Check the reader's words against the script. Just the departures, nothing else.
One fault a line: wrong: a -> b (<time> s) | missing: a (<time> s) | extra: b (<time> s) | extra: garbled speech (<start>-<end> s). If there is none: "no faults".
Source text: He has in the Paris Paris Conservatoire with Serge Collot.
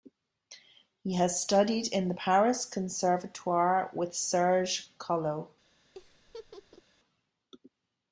extra: studied (1.4 s)
missing: Paris (2.6 s)